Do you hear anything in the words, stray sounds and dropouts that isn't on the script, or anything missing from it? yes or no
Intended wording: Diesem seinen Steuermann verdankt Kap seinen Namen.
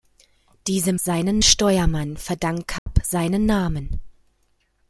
yes